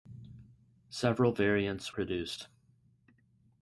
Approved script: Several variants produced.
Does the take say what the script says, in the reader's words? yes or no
yes